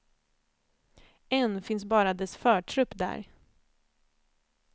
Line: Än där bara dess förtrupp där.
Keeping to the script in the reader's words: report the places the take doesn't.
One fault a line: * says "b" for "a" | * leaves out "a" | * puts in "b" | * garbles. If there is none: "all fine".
* says "finns" for "där"